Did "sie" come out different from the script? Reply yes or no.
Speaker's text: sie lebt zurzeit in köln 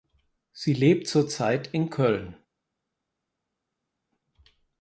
no